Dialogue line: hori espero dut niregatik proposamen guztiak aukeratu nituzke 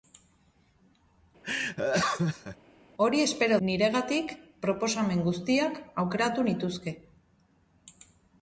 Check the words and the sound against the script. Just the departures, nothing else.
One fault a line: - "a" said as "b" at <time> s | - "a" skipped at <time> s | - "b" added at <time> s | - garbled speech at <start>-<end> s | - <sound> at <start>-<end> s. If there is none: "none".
- laugh at 1.4-2.6 s
- "dut" skipped at 3.6 s